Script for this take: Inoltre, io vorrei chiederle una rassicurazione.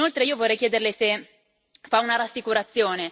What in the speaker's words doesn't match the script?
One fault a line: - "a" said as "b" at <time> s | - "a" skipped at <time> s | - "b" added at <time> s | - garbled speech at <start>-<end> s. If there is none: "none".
- "se fa" added at 0.9 s